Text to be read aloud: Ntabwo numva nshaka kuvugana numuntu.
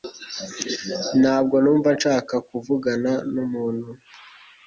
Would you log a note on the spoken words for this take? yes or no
no